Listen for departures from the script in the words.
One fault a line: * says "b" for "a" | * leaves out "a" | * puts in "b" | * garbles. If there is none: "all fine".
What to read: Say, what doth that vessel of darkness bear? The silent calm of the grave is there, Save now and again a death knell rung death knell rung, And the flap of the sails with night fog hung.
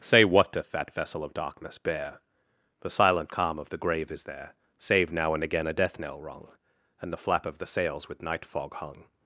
* leaves out "death knell rung"